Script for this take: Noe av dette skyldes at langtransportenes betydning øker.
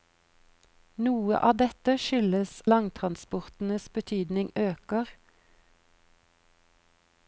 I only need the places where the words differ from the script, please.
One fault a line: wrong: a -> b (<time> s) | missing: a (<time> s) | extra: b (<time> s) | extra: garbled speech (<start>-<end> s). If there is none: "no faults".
missing: at (2.5 s)